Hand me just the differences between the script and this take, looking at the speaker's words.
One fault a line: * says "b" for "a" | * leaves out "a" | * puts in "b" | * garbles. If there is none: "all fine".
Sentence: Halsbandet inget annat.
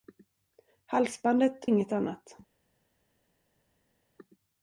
all fine